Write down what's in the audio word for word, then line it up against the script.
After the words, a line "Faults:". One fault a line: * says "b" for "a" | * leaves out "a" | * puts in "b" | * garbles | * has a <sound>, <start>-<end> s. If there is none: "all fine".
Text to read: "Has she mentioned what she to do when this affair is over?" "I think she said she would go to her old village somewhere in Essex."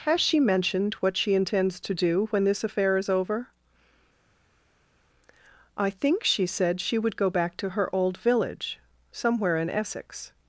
"Has she mentioned what she intends to do when this affair is over?" "I think she said she would go back to her old village somewhere in Essex."
Faults:
* puts in "intends"
* puts in "back"